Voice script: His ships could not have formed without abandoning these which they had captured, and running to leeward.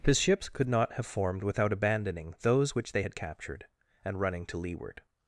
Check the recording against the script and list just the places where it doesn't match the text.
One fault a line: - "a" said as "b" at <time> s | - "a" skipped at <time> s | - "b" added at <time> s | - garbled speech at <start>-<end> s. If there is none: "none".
- "these" said as "those" at 2.4 s